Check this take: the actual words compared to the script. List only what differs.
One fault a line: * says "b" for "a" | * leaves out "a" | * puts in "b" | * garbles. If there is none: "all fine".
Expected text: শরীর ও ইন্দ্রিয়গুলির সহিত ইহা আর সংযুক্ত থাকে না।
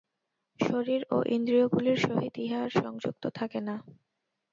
all fine